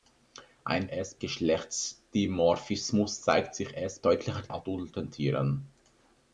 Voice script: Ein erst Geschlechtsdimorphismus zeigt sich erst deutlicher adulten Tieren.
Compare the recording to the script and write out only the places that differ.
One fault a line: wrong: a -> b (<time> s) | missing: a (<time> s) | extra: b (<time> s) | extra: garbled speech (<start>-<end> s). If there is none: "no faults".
no faults